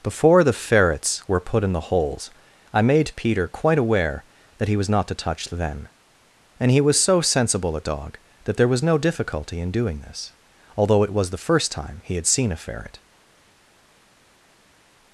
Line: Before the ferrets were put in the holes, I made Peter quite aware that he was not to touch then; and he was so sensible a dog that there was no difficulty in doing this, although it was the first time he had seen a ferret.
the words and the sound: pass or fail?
pass